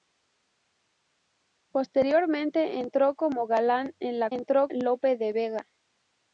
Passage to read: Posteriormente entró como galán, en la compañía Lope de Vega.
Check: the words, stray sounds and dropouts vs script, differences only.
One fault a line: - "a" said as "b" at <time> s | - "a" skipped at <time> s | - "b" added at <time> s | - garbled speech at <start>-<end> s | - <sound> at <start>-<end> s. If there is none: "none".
- "compañía" said as "entró" at 4.3 s